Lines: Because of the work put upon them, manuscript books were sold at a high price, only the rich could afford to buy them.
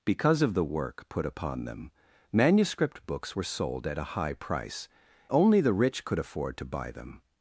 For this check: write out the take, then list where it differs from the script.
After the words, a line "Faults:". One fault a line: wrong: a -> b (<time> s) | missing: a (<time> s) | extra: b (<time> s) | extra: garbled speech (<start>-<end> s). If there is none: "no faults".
Because of the work put upon them, manuscript books were sold at a high price, only the rich could afford to buy them.
Faults:
no faults